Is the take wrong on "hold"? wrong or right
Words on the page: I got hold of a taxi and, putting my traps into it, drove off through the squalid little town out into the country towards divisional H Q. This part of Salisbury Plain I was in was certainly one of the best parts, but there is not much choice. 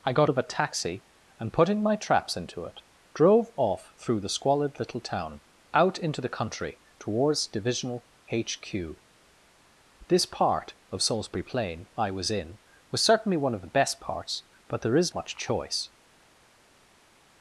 wrong